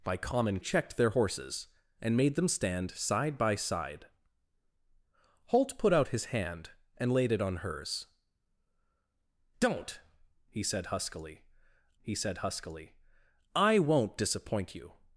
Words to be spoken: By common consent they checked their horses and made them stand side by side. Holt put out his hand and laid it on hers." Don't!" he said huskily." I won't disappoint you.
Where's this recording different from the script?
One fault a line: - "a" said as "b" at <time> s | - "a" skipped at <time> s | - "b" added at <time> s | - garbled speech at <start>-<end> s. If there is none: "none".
- "consent they" skipped at 0.6 s
- "he said huskily" added at 12.0 s